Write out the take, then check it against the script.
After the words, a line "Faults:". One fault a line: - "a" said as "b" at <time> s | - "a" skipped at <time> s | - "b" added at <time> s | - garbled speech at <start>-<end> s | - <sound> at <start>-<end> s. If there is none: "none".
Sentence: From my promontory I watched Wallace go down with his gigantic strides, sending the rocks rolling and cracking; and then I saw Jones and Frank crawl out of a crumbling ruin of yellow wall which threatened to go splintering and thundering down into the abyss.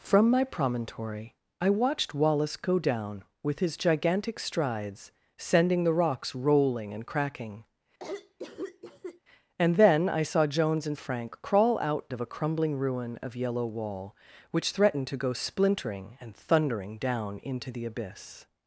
From my promontory I watched Wallace go down with his gigantic strides, sending the rocks rolling and cracking; and then I saw Jones and Frank crawl out of a crumbling ruin of yellow wall which threatened to go splintering and thundering down into the abyss.
Faults:
- cough at 8.0-9.2 s